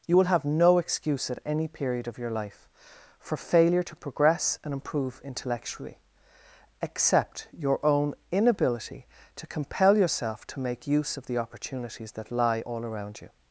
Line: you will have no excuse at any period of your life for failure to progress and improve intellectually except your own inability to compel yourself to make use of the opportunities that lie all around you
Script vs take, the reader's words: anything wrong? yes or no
no